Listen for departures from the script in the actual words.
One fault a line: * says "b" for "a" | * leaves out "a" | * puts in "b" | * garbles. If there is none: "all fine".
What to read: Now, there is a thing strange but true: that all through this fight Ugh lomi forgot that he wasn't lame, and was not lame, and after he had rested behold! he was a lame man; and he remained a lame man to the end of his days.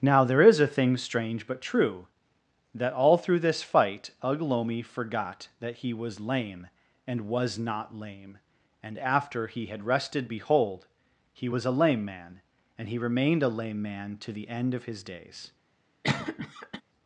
* says "was" for "wasn't"